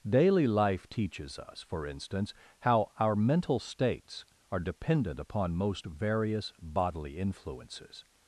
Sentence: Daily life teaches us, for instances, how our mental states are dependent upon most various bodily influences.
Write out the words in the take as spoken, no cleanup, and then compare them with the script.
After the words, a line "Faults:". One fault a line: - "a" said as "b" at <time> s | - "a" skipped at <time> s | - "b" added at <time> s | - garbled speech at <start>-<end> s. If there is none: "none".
Daily life teaches us, for instance, how our mental states are dependent upon most various bodily influences.
Faults:
- "instances" said as "instance" at 1.9 s